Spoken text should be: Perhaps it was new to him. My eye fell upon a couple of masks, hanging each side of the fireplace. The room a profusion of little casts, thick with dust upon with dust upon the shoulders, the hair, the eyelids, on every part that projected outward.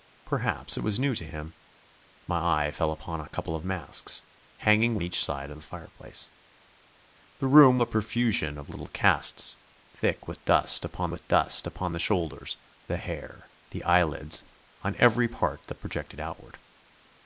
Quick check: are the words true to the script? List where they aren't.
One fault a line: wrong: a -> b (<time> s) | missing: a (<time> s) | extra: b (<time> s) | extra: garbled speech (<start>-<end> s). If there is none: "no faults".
no faults